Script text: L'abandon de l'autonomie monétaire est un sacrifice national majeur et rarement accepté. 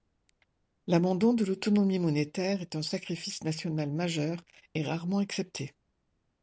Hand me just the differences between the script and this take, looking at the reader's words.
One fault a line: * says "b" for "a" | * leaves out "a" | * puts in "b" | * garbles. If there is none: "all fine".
all fine